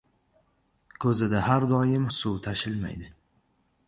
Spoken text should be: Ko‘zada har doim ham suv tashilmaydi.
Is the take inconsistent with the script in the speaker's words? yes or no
yes